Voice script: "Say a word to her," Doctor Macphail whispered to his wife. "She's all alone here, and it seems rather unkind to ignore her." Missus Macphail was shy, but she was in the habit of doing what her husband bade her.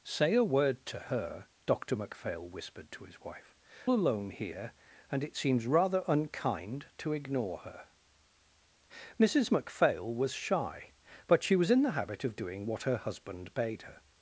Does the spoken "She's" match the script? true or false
false